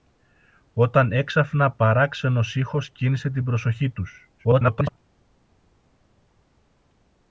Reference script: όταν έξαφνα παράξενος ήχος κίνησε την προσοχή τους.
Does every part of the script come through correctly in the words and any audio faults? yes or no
no